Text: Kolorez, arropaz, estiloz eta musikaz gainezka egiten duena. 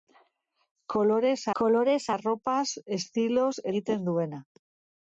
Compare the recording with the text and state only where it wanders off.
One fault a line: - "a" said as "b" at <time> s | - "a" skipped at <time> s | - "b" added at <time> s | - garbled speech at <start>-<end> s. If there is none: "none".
- "kolorez" added at 1.6 s
- "eta musikaz gainezka" skipped at 3.5 s